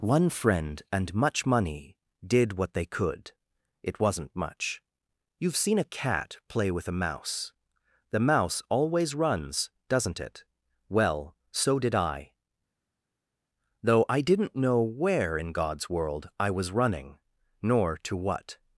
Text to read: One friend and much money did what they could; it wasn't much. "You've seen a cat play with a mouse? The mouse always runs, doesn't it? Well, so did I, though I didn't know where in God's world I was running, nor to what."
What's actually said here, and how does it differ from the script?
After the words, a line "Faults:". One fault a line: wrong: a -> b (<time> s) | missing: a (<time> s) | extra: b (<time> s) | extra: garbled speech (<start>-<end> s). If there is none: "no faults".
One friend and much money did what they could; it wasn't much. "You've seen a cat play with a mouse? The mouse always runs, doesn't it? Well, so did I, though I didn't know where in God's world I was running, nor to what."
Faults:
no faults